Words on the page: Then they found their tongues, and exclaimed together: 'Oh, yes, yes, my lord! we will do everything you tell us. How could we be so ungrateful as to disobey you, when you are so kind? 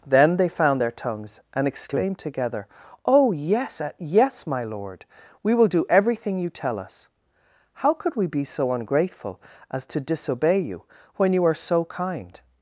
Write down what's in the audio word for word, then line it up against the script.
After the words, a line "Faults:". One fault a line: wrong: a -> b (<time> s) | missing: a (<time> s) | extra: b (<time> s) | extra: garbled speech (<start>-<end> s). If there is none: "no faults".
Then they found their tongues, and exclaimed together: 'Oh, yes, yes, my lord! we will do everything you tell us. How could we be so ungrateful as to disobey you, when you are so kind?
Faults:
no faults